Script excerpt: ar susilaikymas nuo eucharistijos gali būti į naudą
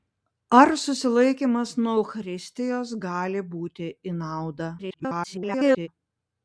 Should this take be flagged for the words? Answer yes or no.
yes